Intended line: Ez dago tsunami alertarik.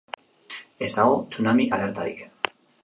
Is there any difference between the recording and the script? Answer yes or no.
no